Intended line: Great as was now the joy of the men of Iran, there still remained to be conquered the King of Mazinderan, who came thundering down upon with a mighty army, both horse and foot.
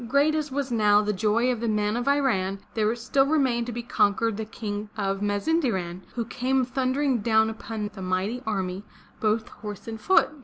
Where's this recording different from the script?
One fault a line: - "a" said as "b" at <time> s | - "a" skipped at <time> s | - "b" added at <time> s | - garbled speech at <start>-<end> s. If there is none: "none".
none